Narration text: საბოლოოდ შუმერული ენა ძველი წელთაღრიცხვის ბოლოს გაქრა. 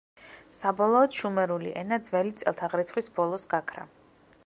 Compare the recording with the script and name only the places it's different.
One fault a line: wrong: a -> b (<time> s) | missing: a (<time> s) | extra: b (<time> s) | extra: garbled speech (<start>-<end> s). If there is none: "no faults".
no faults